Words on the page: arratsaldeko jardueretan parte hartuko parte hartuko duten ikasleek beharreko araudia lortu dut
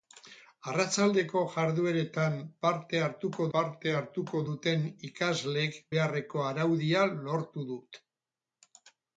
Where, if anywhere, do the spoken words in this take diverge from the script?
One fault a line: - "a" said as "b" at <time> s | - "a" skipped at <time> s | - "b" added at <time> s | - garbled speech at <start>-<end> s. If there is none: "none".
none